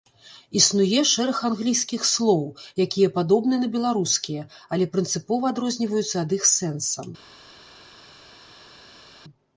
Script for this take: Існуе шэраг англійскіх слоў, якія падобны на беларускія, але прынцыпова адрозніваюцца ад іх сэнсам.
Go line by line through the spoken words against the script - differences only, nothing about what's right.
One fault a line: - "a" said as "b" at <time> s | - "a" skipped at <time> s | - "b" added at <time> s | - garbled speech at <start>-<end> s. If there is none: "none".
none